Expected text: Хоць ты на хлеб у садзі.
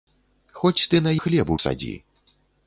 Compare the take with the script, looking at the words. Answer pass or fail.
pass